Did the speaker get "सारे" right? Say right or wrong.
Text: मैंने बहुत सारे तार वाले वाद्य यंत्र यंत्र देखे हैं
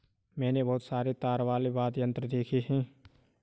right